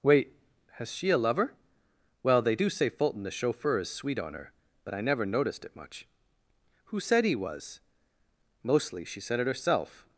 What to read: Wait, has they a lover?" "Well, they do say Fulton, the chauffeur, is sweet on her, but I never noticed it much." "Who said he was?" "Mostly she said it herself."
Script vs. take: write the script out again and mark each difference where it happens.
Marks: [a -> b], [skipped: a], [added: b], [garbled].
Wait, has [they -> she] a lover?" "Well, they do say Fulton, the chauffeur, is sweet on her, but I never noticed it much." "Who said he was?" "Mostly she said it herself."